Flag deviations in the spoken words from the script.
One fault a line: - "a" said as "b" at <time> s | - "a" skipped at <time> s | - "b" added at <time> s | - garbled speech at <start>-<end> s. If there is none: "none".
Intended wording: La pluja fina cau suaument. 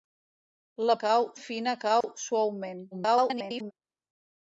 - "pluja" said as "cau" at 1.0 s
- garbled speech at 2.9-3.7 s